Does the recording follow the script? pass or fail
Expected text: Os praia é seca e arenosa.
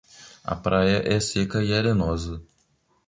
fail